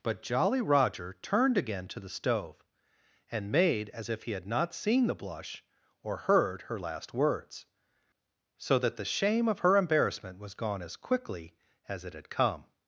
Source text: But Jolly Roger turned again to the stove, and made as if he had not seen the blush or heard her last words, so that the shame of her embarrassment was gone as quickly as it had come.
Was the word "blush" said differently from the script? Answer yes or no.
no